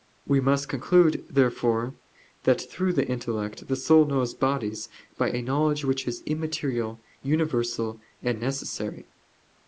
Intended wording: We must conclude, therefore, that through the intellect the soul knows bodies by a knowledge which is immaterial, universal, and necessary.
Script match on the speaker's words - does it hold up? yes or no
yes